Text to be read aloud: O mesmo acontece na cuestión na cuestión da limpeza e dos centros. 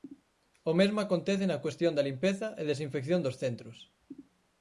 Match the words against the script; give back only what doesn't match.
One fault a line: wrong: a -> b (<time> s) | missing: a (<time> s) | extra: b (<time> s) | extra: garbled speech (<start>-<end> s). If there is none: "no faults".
missing: na cuestión (1.9 s)
extra: desinfección (2.7 s)